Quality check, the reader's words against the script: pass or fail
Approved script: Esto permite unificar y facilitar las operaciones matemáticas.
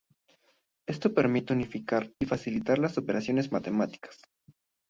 pass